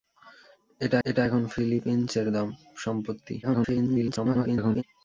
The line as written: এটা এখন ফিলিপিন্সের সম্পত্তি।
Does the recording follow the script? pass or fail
fail